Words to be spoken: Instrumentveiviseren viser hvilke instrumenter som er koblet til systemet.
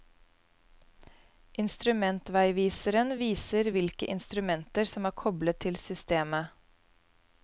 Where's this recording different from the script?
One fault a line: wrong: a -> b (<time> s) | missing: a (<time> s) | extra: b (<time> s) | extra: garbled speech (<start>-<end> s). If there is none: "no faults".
no faults